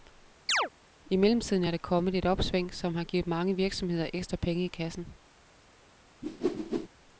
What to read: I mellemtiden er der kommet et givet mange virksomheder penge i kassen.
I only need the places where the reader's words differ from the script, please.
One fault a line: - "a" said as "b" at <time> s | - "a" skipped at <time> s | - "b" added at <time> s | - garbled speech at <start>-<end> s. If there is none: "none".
- "opsving som har" added at 2.2 s
- "ekstra" added at 4.1 s